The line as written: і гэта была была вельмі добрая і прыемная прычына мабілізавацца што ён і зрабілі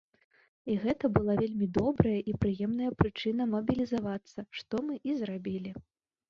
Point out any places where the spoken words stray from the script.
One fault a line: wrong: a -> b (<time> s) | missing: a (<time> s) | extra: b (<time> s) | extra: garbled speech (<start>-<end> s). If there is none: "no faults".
missing: была (1.4 s)
wrong: ён -> мы (4.9 s)